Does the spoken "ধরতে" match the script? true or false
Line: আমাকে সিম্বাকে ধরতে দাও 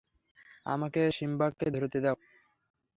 true